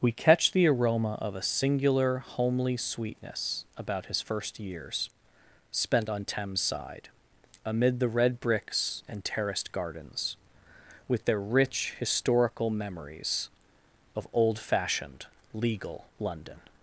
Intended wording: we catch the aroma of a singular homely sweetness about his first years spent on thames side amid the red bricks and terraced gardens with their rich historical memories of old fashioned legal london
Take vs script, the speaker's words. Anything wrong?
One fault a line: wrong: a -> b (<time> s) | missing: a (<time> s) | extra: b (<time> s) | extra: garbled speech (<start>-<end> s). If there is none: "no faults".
no faults